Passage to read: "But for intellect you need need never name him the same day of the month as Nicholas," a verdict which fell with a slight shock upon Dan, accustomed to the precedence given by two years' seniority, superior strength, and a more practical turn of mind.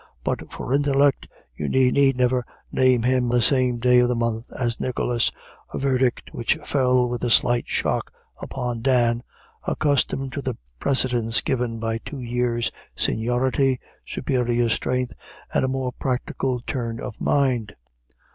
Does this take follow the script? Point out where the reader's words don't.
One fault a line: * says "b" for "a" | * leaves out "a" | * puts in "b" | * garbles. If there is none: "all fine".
all fine